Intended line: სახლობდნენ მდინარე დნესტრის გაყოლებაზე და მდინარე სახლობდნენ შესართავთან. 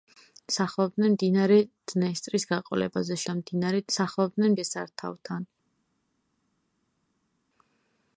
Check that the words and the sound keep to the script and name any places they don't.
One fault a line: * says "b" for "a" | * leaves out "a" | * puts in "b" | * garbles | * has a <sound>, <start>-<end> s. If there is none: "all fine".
all fine